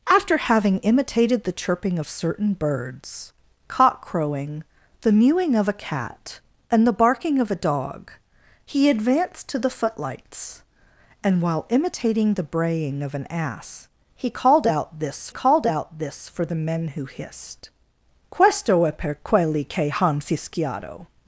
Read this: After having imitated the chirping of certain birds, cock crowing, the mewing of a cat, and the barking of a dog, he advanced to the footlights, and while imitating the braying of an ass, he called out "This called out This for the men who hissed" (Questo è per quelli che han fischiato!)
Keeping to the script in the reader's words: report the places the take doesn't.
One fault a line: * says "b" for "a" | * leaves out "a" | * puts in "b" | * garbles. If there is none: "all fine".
all fine